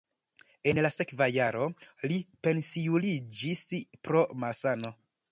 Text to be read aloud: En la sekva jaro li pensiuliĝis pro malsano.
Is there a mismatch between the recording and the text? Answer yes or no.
no